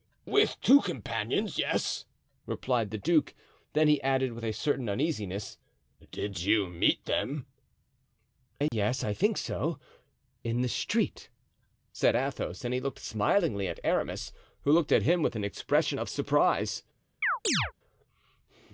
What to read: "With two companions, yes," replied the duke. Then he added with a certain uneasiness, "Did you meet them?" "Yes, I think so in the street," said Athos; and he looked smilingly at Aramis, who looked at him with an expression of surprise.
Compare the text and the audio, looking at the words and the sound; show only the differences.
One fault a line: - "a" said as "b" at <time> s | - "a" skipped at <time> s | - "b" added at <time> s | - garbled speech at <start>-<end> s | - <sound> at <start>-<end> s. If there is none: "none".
- dropout at 8.7-8.7 s
- chirp at 17.2-17.7 s